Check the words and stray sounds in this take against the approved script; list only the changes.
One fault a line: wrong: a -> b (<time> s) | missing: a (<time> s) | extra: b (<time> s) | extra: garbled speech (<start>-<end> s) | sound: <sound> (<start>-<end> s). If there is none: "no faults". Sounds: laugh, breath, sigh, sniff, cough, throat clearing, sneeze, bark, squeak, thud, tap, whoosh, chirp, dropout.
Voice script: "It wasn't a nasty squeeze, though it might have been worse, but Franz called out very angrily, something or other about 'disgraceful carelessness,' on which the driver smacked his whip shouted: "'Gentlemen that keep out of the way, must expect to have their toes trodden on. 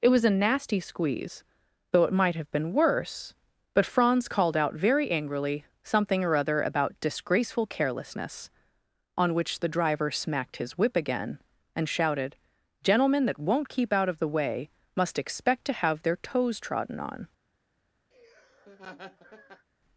wrong: wasn't -> was (0.1 s)
extra: again and (10.9 s)
extra: won't (13.4 s)
sound: laugh (18.1-19.7 s)